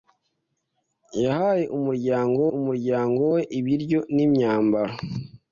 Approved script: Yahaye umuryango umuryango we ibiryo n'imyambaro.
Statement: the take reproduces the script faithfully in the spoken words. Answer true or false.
true